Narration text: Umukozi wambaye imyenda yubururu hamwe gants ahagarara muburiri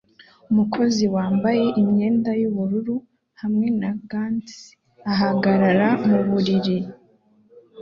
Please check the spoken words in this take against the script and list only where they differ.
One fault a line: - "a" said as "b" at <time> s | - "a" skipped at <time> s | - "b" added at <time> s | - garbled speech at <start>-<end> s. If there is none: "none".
- "na" added at 3.8 s